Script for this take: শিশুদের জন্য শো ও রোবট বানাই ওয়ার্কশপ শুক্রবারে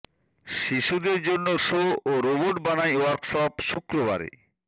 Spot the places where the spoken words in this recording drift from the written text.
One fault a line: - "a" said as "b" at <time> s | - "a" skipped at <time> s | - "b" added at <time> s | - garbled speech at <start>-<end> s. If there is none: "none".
none